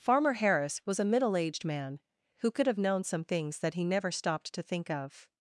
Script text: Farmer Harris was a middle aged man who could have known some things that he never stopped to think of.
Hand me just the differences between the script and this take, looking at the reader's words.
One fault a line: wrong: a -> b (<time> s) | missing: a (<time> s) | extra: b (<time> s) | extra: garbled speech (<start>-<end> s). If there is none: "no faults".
no faults